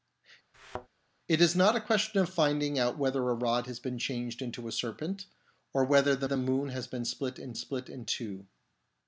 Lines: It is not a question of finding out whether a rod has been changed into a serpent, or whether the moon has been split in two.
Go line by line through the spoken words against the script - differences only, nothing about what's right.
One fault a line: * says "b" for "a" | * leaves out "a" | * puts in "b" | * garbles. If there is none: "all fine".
* puts in "the"
* puts in "split in"